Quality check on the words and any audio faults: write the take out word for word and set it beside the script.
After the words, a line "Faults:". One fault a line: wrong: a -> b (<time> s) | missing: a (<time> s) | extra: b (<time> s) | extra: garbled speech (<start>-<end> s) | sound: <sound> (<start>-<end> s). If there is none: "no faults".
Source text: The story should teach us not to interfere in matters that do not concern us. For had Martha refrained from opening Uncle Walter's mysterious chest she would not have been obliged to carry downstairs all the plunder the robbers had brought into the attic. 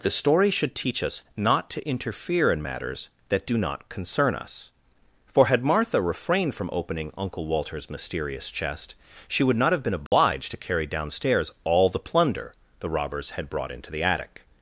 The story should teach us not to interfere in matters that do not concern us. For had Martha refrained from opening Uncle Walter's mysterious chest she would not have been obliged to carry downstairs all the plunder the robbers had brought into the attic.
Faults:
sound: dropout (10.1-10.1 s)